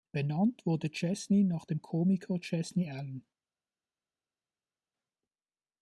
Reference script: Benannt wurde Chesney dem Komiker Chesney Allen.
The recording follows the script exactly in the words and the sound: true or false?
false